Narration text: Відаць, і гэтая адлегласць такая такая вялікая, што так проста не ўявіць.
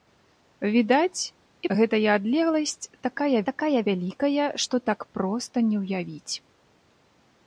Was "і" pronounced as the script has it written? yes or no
yes